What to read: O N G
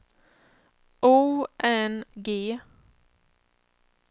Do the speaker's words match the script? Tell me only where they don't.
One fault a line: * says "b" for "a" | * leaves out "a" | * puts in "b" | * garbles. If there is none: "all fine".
all fine